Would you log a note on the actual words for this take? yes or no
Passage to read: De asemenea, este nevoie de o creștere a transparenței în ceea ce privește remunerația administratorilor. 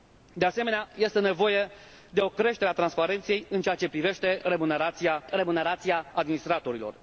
yes